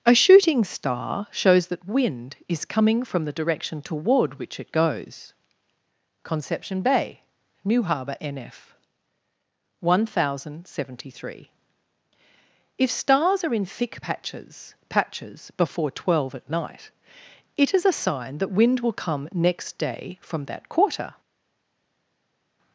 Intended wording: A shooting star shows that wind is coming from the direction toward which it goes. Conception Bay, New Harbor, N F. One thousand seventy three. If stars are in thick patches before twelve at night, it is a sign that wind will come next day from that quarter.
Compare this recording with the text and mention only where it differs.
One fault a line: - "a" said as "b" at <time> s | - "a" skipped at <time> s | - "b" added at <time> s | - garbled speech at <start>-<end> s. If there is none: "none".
- "patches" added at 14.9 s